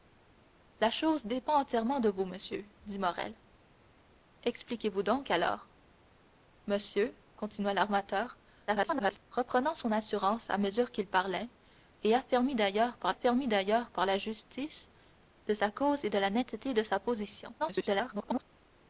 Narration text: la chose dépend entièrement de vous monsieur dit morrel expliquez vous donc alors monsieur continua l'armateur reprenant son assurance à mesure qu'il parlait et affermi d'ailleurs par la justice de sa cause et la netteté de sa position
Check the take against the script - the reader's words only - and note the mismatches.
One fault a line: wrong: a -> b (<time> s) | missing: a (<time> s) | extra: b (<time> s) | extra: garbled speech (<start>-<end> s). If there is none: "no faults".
extra: garbled speech (8.7-9.2 s)
extra: affermi d'ailleurs par (13.1 s)
extra: garbled speech (17.6-18.4 s)